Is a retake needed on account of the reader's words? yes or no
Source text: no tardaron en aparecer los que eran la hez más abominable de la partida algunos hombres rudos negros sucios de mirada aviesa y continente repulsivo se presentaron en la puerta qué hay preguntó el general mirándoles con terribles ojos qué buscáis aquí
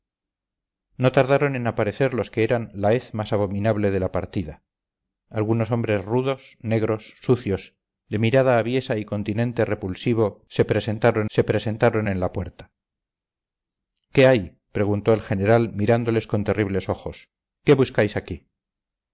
yes